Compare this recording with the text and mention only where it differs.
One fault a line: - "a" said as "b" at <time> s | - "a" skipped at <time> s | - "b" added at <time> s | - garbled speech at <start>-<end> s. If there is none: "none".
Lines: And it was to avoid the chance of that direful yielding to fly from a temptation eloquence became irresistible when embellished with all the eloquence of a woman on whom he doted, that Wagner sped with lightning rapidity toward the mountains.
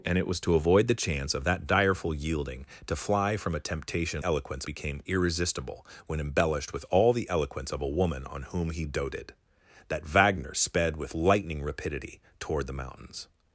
none